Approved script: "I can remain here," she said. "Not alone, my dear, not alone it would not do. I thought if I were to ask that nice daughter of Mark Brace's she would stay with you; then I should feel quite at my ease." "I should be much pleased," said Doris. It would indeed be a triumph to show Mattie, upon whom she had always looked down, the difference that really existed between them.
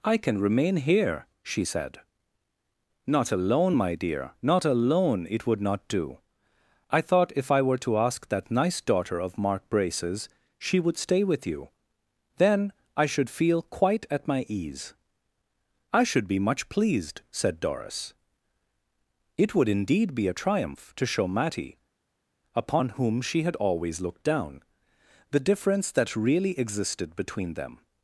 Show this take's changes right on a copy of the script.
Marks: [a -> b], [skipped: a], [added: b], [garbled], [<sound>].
"I can remain here," she said. "Not alone, my dear, not alone it would not do. I thought if I were to ask that nice daughter of Mark Brace's she would stay with you; then I should feel quite at my ease." "I should be much pleased," said Doris. It would indeed be a triumph to show Mattie, upon whom she had always looked down, the difference that really existed between them.